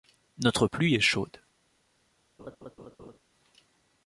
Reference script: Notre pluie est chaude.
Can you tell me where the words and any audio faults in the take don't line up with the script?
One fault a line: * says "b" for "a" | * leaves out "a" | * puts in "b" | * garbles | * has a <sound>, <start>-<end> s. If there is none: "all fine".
* has a laugh, 2.4-3.2 s